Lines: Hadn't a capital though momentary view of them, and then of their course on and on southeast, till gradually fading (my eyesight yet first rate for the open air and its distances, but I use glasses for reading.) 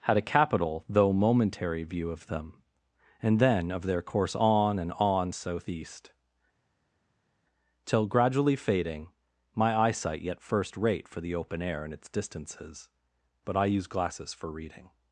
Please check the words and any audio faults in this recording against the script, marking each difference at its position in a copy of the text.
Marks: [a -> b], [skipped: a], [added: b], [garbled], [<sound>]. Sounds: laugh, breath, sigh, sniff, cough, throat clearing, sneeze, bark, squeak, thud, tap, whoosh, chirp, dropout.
[Hadn't -> Had] a capital though momentary view of them, and then of their course on and on southeast, till gradually fading (my eyesight yet first rate for the open air and its distances, but I use glasses for reading.)